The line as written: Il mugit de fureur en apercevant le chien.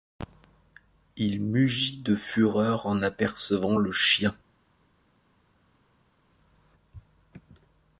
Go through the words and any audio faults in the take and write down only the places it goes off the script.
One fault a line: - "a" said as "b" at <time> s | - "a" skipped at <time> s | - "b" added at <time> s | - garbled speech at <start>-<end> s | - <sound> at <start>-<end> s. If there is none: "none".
none